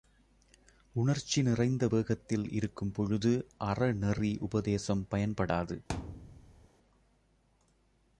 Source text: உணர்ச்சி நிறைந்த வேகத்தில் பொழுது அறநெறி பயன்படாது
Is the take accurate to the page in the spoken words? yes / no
no